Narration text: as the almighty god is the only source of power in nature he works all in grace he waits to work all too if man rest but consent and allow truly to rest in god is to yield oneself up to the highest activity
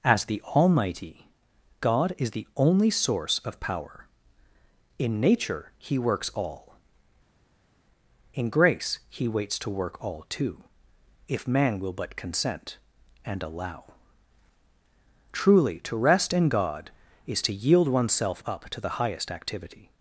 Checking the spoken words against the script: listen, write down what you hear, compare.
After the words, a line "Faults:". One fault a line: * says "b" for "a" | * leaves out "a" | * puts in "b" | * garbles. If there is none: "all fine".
as the almighty god is the only source of power in nature he works all in grace he waits to work all too if man will but consent and allow truly to rest in god is to yield oneself up to the highest activity
Faults:
* says "will" for "rest"